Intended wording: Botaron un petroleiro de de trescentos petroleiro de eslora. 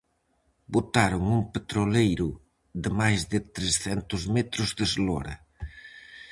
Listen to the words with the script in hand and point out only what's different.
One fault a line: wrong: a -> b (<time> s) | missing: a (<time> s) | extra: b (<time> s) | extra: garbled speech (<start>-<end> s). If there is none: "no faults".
extra: máis (3.0 s)
wrong: petroleiro -> metros (4.4 s)